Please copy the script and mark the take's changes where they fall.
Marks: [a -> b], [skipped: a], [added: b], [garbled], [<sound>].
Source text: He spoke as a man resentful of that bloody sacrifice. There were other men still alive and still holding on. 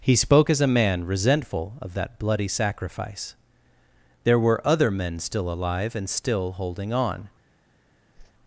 He spoke as a man resentful of that bloody sacrifice. There were other men still alive and still holding on. [whoosh]